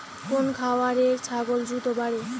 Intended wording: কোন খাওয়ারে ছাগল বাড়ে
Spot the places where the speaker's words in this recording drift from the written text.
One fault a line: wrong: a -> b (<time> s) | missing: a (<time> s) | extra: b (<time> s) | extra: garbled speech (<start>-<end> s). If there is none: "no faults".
extra: দ্রুত (1.7 s)